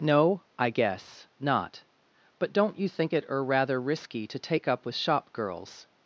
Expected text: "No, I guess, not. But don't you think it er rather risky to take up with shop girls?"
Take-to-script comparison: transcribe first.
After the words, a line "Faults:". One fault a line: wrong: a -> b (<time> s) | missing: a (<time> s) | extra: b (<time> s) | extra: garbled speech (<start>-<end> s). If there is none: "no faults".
"No, I guess, not. But don't you think it er rather risky to take up with shop girls?"
Faults:
no faults